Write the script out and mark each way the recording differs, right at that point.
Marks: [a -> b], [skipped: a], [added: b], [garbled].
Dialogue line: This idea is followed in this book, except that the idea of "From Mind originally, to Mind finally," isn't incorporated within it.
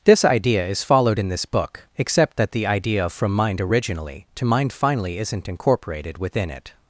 This idea is followed in this book, except that the idea of "From Mind originally, to Mind finally," isn't incorporated within it.